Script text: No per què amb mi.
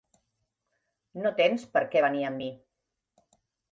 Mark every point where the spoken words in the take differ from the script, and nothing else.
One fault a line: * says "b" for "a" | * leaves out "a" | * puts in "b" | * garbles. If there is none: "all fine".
* puts in "tens"
* puts in "venir"